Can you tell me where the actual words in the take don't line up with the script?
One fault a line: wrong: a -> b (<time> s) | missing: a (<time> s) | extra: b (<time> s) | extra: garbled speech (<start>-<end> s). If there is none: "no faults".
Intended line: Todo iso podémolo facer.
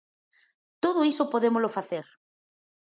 no faults